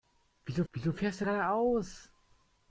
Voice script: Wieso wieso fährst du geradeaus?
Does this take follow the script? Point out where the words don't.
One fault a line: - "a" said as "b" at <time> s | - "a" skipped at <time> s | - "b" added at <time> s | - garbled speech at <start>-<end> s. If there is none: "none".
none